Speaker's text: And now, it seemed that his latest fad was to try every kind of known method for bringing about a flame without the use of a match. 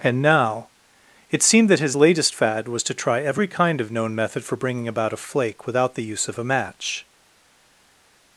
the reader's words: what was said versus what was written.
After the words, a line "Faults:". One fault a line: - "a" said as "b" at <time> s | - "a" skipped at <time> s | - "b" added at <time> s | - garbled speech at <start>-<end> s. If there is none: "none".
And now, it seemed that his latest fad was to try every kind of known method for bringing about a flake without the use of a match.
Faults:
- "flame" said as "flake" at 5.2 s